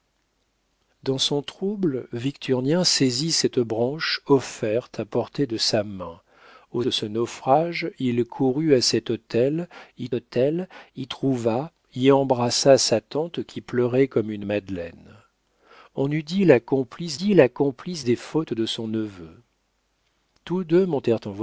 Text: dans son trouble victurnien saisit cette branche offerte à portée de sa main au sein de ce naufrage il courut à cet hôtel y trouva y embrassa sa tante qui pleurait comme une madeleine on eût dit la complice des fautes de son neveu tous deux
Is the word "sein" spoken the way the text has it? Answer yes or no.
no